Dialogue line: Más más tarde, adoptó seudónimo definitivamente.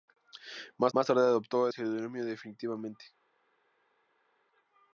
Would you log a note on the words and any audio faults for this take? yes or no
no